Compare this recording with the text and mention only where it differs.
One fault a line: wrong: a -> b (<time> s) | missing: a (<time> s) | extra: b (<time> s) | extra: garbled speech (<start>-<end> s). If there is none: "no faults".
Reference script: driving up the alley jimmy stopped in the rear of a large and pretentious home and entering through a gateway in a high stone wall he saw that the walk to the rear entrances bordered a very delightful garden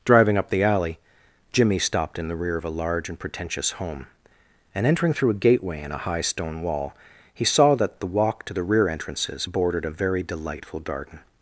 no faults